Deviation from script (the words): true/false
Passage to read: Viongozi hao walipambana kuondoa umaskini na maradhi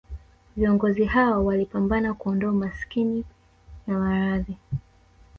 false